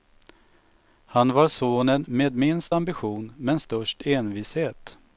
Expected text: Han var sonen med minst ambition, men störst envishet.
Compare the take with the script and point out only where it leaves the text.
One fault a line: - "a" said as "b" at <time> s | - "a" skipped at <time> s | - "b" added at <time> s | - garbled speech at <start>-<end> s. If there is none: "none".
none